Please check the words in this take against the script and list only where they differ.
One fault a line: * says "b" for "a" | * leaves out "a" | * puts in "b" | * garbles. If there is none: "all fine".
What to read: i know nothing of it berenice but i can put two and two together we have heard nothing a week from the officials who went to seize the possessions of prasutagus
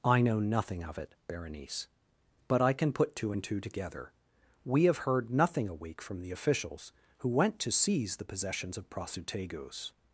all fine